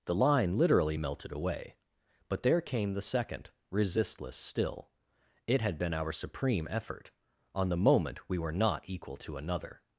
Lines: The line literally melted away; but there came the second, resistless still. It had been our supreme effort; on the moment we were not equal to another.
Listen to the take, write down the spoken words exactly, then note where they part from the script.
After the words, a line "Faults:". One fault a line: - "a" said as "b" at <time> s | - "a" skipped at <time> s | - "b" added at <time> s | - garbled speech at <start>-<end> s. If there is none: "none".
The line literally melted away; but there came the second, resistless still. It had been our supreme effort; on the moment we were not equal to another.
Faults:
none